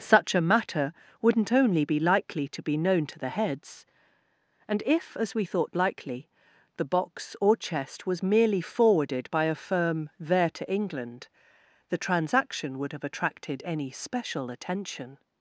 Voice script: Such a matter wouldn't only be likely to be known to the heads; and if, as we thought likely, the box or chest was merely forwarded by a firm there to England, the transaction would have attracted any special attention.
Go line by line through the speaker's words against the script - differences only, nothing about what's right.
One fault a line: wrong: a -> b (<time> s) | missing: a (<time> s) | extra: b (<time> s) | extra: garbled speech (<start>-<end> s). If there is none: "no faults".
no faults